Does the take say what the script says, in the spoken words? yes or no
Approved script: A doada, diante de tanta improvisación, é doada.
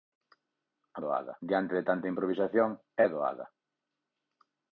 yes